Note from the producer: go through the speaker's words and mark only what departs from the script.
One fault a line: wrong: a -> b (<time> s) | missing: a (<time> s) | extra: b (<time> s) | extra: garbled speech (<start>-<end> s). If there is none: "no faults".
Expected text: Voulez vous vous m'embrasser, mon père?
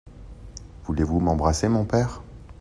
missing: vous (1.2 s)